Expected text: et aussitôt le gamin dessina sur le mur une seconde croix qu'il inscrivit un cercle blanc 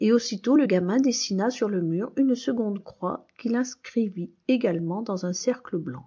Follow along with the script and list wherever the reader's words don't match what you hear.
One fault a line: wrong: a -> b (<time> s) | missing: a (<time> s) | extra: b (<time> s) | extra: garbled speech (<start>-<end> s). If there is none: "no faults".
extra: également dans (4.5 s)